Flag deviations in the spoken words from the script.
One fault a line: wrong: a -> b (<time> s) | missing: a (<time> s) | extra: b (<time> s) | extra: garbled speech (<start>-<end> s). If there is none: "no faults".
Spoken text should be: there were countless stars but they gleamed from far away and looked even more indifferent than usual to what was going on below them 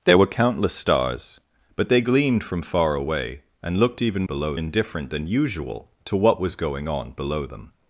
wrong: more -> below (4.2 s)